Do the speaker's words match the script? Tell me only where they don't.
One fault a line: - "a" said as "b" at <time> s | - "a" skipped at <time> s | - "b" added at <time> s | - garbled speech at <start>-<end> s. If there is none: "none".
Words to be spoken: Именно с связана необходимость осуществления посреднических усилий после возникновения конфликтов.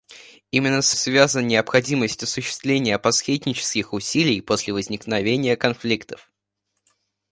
none